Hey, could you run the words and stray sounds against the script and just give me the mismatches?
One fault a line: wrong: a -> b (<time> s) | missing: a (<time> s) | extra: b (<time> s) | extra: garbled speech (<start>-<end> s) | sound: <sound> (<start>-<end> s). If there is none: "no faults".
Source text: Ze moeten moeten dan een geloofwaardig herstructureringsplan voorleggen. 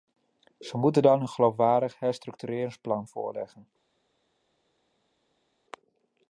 missing: moeten (1.0 s)